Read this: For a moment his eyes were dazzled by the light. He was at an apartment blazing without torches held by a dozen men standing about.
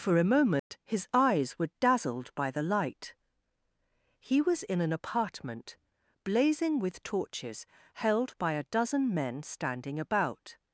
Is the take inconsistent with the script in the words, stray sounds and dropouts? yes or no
yes